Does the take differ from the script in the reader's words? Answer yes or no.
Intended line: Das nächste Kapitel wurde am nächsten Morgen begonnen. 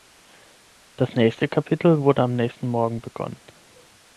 no